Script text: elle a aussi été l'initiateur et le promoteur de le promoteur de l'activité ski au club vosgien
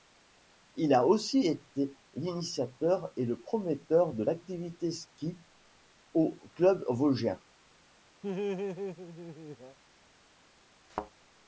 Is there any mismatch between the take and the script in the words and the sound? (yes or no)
yes